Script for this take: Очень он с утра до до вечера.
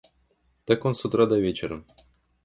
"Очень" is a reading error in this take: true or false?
true